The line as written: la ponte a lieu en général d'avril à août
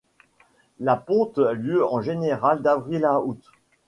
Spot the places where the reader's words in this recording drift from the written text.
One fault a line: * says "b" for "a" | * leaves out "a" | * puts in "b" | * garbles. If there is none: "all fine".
all fine